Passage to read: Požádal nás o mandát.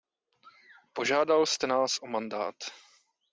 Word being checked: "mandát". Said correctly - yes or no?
yes